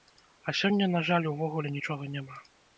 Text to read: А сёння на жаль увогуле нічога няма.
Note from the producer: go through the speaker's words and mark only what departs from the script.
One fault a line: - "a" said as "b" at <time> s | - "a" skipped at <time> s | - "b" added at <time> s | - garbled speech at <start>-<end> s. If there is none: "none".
none